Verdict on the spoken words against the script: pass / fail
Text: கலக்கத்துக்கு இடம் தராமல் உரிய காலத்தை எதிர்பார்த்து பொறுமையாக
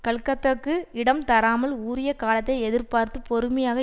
pass